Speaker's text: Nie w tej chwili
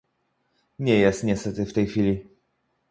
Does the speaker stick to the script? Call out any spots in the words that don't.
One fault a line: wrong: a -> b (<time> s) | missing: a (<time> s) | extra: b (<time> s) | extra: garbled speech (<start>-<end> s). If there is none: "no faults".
extra: jest niestety (1.0 s)